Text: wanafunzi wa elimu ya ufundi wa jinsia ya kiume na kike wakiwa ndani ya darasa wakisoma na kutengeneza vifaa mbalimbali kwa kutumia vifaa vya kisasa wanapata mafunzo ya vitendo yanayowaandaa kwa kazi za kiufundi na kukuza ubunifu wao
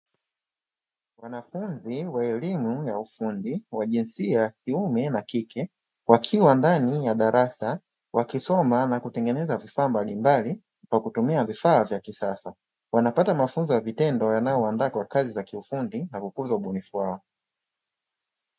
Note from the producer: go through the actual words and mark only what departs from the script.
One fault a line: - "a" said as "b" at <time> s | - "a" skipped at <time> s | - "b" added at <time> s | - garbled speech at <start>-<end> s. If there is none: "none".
none